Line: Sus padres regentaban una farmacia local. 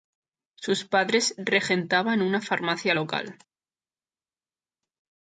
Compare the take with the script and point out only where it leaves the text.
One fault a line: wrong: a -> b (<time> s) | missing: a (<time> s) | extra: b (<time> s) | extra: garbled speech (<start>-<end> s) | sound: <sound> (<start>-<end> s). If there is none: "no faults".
no faults